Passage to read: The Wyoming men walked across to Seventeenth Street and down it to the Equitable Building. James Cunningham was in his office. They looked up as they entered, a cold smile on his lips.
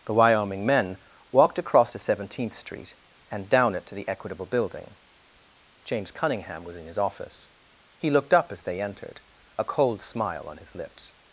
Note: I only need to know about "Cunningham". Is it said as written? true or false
true